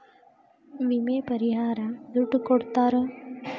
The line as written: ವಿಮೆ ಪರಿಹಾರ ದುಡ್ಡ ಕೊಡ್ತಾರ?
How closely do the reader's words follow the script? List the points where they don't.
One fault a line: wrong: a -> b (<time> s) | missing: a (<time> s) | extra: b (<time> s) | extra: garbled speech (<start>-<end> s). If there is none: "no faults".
no faults